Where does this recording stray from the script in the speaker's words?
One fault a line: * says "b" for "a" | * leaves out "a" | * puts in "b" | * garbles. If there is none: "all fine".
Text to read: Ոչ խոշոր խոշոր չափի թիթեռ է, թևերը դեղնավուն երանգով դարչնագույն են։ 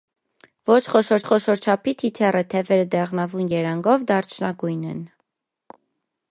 all fine